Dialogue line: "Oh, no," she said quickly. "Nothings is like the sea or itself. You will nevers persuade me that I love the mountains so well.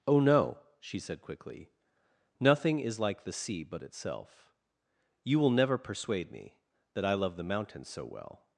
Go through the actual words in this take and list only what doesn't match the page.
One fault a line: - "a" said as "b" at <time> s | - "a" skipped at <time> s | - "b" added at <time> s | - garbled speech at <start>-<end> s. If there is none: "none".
- "Nothings" said as "Nothing" at 2.4 s
- "or" said as "but" at 3.6 s
- "nevers" said as "never" at 5.5 s